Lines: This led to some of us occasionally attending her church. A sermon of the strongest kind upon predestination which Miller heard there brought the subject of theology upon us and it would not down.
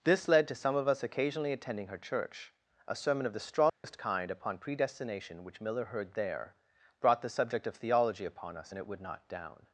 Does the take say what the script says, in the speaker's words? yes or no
yes